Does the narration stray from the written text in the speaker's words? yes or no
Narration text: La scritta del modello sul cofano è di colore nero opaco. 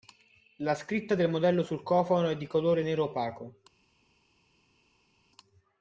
no